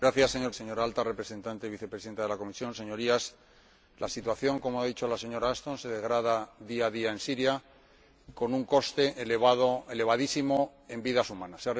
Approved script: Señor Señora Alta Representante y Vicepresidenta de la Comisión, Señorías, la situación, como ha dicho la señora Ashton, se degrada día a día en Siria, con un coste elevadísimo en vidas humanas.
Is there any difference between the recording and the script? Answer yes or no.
no